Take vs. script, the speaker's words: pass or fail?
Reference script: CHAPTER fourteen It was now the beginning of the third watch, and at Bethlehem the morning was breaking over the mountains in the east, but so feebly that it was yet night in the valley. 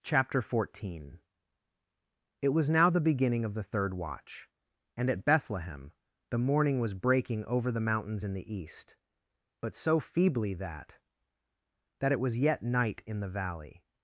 fail